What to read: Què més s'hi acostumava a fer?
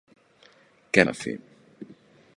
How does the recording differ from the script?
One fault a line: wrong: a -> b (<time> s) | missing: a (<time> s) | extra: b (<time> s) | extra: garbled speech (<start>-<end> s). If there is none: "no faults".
missing: més s'hi acostumava (1.1 s)